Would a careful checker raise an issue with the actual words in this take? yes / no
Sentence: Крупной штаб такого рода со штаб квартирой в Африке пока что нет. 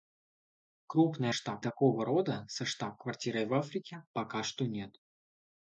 no